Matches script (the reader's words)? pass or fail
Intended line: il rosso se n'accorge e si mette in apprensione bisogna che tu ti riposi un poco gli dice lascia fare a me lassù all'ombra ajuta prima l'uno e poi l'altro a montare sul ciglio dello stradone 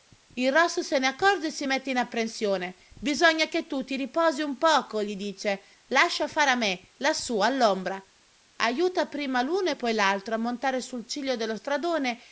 pass